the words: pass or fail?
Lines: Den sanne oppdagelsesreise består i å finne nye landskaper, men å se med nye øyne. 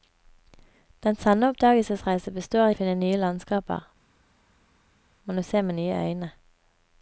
pass